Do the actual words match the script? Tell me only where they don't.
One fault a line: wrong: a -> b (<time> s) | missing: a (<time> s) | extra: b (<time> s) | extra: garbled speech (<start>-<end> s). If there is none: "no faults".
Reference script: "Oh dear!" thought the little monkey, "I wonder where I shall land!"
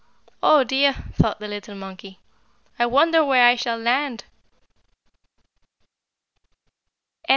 no faults